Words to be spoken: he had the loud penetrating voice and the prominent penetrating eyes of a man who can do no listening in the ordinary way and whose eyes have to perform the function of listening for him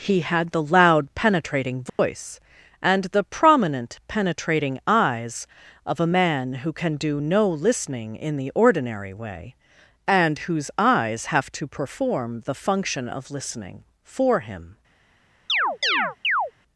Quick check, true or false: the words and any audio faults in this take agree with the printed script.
false